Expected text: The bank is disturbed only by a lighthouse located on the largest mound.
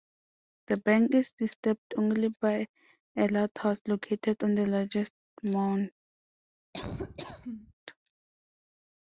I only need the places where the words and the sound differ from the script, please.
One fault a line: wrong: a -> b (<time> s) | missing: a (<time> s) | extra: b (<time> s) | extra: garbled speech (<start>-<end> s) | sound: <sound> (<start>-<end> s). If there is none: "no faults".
sound: laugh (6.7-7.7 s)